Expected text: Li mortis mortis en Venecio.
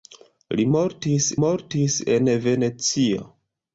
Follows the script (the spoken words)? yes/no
yes